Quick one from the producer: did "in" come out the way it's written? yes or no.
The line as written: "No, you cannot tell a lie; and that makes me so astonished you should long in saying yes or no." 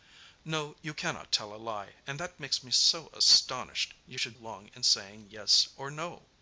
yes